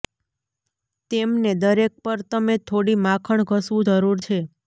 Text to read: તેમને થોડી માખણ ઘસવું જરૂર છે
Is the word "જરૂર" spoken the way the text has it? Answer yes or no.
yes